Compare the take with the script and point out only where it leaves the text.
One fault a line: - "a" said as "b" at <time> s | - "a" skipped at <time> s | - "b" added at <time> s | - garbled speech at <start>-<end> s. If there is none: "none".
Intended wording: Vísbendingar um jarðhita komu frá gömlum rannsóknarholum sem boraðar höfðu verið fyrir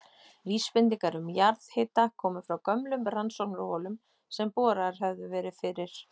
none